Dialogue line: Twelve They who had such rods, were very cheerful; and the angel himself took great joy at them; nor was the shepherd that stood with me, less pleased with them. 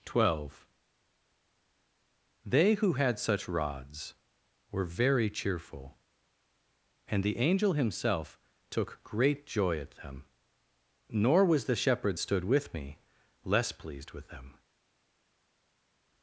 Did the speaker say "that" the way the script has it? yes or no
no